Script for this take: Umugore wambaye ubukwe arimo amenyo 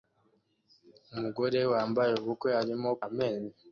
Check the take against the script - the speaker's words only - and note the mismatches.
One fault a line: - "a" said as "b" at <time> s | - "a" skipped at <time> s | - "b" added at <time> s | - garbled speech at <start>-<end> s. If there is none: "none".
none